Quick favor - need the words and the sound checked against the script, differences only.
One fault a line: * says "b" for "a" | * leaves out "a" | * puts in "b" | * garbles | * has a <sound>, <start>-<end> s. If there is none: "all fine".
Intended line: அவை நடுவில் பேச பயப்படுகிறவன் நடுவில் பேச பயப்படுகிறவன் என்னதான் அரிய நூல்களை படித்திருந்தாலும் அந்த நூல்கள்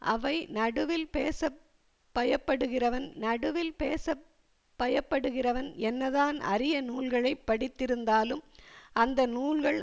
all fine